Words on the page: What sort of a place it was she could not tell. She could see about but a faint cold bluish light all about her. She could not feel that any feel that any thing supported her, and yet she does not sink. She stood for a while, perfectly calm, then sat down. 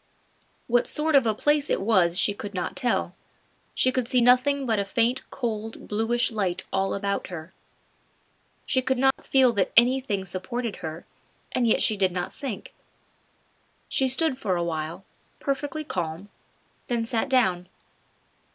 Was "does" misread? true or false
true